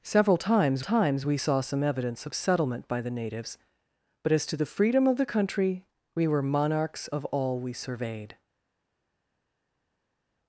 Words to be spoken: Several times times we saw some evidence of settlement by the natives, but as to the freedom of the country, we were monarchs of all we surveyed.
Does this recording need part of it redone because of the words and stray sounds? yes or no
no